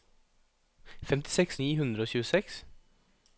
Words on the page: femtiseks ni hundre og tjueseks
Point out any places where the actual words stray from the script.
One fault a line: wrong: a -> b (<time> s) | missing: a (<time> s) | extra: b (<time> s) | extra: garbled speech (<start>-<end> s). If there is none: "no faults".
no faults